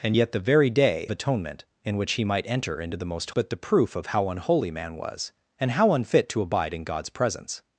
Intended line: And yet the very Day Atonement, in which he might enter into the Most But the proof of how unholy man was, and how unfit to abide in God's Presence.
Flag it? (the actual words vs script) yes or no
no